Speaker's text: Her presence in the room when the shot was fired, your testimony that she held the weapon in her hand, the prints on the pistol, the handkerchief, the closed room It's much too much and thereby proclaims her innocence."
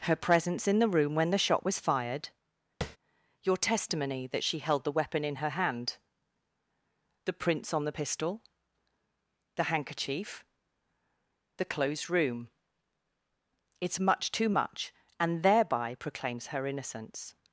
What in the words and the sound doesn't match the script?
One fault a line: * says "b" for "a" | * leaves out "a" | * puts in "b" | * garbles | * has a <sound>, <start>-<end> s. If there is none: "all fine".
* has a tap, 2.8-3.0 s